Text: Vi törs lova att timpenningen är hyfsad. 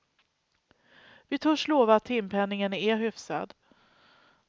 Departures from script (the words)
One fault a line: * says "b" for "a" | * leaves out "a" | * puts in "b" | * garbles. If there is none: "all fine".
all fine